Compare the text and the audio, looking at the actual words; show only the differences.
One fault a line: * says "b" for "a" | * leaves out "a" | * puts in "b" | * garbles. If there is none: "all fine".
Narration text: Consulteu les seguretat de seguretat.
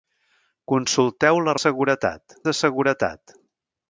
all fine